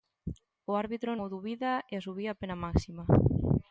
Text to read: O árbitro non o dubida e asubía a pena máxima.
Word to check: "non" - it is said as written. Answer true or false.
false